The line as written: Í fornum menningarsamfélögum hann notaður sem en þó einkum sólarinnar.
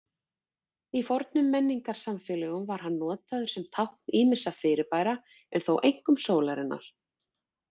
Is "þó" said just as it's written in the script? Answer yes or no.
yes